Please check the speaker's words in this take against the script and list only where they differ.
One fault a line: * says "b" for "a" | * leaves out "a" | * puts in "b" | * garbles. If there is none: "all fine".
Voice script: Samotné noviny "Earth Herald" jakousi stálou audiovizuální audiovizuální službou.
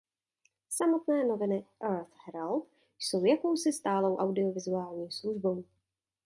* puts in "jsou"
* leaves out "audiovizuální"